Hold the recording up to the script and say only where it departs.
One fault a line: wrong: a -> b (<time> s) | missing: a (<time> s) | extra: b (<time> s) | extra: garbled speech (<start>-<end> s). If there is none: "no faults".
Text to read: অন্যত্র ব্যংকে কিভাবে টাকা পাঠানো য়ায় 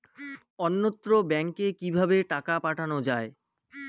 no faults